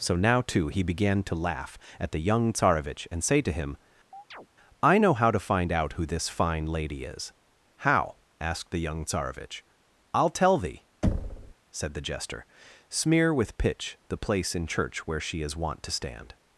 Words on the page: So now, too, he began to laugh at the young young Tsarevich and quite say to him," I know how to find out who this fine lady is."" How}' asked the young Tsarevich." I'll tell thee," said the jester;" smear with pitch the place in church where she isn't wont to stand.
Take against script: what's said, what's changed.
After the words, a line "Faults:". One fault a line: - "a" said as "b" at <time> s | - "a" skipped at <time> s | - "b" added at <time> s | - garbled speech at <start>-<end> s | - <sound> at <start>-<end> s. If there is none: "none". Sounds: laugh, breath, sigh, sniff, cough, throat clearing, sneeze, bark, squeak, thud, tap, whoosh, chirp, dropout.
So now, too, he began to laugh at the young Tsarevich and say to him," I know how to find out who this fine lady is."" How}' asked the young Tsarevich." I'll tell thee," said the jester;" smear with pitch the place in church where she is wont to stand.
Faults:
- "young" skipped at 2.5 s
- "quite" skipped at 3.2 s
- chirp at 4.1-4.5 s
- thud at 11.0-11.5 s
- "isn't" said as "is" at 15.4 s